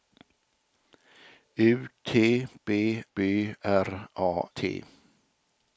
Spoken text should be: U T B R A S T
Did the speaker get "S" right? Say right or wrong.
wrong